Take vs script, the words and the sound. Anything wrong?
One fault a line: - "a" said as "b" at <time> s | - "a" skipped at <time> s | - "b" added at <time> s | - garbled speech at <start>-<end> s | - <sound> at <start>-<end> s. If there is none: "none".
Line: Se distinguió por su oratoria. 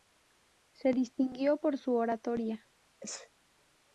- sneeze at 3.0-3.3 s